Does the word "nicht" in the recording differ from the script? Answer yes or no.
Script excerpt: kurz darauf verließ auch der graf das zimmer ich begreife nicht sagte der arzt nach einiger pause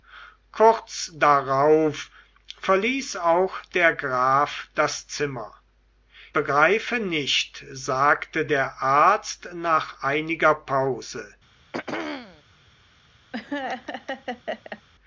no